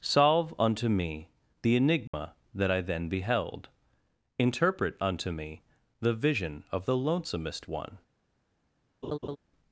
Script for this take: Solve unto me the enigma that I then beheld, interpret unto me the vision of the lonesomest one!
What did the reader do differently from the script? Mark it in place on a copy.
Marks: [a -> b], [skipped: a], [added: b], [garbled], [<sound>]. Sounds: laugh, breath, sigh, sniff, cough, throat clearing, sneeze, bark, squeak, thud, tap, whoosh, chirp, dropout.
Solve unto me the enigma [dropout] that I then beheld, interpret unto me the vision of the lonesomest one! [laugh]